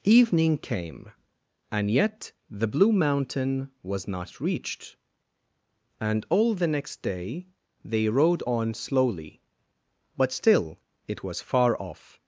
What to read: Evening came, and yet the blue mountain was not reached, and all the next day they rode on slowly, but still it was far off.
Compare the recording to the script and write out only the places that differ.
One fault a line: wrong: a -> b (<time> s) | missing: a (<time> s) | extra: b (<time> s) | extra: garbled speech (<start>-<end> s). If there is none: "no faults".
no faults